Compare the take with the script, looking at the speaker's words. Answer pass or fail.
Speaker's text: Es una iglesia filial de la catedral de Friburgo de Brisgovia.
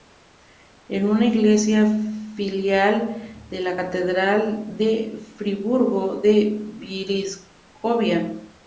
pass